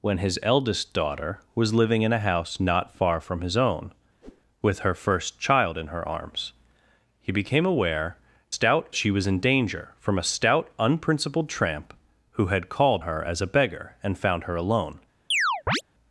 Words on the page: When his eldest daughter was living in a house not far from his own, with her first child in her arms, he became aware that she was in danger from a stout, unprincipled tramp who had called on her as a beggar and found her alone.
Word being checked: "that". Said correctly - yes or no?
no